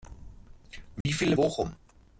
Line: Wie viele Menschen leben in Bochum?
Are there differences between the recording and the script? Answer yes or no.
yes